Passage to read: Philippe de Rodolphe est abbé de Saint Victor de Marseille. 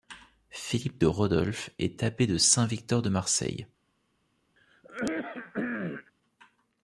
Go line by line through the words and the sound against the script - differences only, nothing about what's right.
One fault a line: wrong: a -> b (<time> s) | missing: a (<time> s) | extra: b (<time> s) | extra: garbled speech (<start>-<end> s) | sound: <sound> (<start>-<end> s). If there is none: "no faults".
sound: throat clearing (4.6-6.1 s)